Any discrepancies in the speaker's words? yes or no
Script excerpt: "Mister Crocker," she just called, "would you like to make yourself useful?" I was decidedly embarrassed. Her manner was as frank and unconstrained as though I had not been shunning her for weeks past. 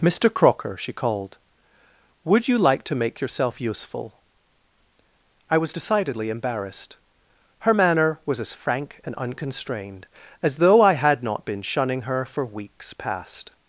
yes